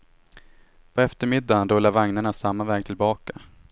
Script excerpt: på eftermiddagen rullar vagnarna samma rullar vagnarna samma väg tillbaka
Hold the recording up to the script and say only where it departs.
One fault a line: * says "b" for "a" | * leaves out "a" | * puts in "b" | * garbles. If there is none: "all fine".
* leaves out "rullar vagnarna samma"